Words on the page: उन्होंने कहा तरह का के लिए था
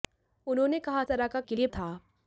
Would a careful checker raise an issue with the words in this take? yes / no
no